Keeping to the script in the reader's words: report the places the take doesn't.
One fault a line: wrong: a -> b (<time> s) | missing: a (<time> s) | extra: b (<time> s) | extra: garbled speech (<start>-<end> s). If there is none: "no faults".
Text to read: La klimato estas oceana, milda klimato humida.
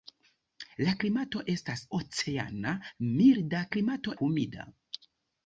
no faults